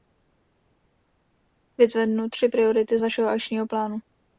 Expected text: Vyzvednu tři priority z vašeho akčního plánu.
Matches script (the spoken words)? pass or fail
pass